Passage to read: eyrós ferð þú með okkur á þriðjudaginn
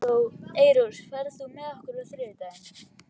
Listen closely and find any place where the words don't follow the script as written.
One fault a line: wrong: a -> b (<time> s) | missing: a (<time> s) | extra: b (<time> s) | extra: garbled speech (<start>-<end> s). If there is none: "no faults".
no faults